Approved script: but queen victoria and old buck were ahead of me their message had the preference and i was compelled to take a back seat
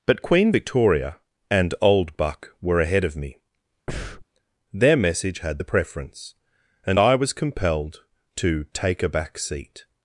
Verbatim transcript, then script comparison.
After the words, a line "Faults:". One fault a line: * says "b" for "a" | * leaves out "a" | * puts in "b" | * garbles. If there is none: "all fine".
but queen victoria and old buck were ahead of me their message had the preference and i was compelled to take a back seat
Faults:
all fine